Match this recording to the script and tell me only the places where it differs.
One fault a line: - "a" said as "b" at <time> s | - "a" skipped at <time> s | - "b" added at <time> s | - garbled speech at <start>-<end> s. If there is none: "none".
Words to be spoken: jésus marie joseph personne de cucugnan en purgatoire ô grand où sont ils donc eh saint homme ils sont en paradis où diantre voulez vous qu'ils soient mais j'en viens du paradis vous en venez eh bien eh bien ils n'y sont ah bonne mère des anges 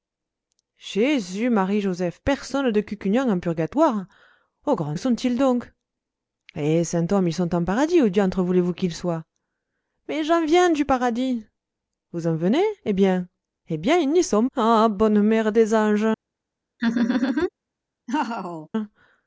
none